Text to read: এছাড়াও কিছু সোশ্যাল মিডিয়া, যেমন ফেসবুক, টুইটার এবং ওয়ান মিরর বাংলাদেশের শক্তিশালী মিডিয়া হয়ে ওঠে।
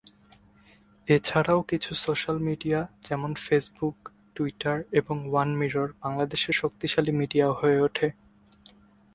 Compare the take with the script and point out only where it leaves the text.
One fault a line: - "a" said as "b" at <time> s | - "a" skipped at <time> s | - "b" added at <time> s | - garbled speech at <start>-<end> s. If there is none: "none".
none